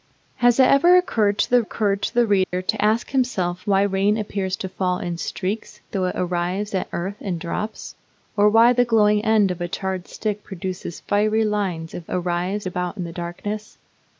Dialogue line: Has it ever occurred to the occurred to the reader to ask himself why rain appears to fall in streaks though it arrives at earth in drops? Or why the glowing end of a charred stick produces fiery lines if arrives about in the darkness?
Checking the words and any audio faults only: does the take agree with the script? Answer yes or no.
no